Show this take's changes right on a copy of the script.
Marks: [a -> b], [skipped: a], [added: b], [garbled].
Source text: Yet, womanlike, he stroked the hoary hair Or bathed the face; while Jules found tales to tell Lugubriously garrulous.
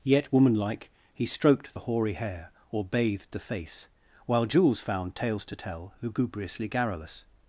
Yet, womanlike, he stroked the hoary hair Or bathed the face; while Jules found tales to tell Lugubriously garrulous.